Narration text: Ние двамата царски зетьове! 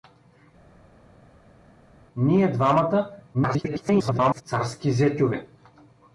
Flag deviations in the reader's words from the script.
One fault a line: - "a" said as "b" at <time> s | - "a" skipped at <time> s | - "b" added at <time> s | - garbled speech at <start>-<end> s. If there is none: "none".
- garbled speech at 3.3-4.4 s